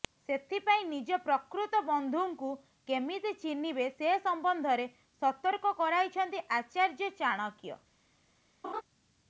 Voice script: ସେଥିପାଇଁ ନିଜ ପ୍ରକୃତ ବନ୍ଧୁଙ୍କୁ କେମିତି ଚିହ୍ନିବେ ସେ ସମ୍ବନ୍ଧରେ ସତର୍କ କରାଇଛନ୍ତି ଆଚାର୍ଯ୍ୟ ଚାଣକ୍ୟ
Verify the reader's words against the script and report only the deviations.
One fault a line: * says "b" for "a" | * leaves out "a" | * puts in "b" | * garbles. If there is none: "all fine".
all fine